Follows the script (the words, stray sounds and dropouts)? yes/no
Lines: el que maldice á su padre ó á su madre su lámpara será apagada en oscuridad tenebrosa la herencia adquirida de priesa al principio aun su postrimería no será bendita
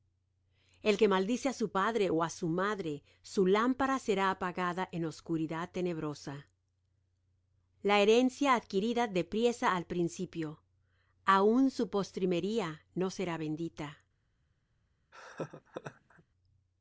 no